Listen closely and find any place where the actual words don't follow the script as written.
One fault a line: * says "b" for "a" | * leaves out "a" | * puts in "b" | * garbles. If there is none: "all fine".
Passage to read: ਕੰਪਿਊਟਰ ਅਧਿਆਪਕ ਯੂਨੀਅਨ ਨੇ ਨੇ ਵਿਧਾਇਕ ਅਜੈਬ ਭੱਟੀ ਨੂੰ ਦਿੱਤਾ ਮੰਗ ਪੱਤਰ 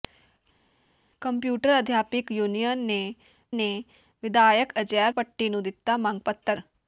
all fine